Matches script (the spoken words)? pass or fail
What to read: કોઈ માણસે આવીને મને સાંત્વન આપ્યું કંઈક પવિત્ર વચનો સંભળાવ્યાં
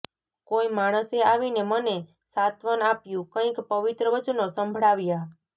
pass